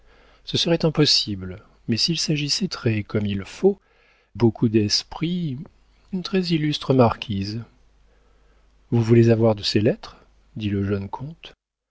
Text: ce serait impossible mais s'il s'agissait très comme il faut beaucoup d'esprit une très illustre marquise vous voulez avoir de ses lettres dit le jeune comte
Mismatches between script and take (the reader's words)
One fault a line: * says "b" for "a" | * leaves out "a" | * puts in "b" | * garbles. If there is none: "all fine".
all fine